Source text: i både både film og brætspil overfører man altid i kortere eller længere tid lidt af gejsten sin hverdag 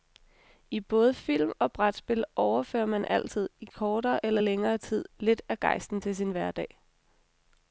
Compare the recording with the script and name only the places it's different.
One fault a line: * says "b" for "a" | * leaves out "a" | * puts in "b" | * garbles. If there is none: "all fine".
* leaves out "både"
* puts in "til"